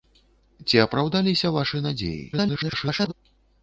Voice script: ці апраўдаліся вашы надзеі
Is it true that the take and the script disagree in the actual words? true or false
true